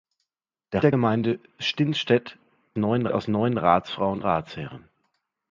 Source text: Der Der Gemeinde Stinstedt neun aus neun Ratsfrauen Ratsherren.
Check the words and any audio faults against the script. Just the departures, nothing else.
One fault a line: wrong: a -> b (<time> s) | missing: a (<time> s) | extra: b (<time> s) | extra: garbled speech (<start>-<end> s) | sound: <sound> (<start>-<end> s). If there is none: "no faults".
no faults